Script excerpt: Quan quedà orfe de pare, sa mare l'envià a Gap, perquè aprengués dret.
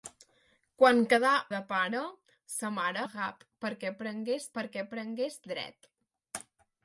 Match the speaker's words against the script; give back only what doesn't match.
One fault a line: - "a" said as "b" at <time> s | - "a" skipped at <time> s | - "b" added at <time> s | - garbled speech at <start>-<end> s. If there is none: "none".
- "orfe" skipped at 1.3 s
- "l'envià" skipped at 3.0 s
- "perquè aprengués" added at 4.6 s